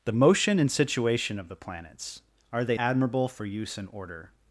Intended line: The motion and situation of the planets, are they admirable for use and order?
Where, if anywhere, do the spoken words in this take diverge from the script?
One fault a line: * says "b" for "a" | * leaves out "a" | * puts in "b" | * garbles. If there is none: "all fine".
all fine